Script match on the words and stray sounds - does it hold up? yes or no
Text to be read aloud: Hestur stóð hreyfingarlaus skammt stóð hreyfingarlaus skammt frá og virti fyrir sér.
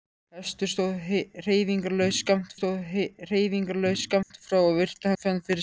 no